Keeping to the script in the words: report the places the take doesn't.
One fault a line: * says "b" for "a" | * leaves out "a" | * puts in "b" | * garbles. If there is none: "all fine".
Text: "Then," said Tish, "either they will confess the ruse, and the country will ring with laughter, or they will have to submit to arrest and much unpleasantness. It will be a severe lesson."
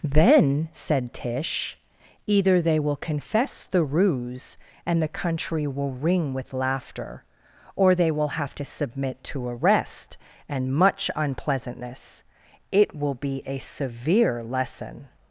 all fine